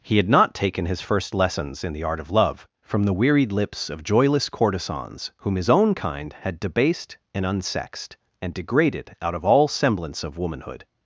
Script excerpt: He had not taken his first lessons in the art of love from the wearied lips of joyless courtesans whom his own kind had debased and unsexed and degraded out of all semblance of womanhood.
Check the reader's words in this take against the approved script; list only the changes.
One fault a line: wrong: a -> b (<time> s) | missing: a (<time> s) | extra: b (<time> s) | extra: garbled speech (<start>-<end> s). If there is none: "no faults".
no faults